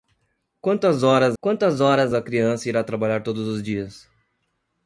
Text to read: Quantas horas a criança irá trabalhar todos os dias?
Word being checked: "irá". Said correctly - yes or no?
yes